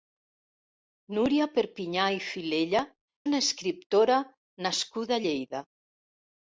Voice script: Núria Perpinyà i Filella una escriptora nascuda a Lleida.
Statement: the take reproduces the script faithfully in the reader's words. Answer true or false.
true